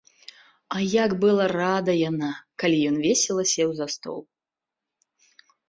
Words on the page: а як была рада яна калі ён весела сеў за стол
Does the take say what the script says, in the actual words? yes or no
yes